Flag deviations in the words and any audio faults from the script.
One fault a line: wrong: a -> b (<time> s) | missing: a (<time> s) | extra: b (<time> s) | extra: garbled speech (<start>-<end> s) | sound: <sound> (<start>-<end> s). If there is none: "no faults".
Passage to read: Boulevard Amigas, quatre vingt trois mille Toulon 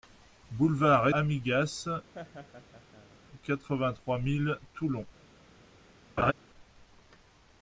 sound: laugh (2.1-3.2 s)
sound: laugh (6.2-6.3 s)